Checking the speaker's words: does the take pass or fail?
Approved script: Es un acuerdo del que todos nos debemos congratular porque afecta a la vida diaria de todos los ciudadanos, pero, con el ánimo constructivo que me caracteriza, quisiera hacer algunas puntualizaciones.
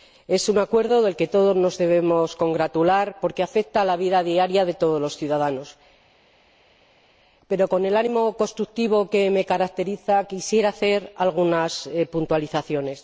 pass